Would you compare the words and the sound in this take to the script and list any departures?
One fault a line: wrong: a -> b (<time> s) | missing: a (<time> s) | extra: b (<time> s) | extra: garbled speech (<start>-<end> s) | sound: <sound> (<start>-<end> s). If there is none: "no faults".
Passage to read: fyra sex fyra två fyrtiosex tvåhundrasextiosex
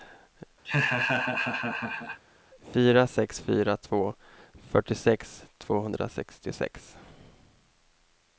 sound: laugh (0.6-2.2 s)